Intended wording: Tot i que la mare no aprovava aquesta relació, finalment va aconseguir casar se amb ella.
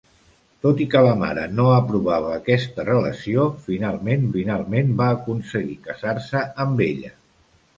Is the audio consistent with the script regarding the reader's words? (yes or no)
no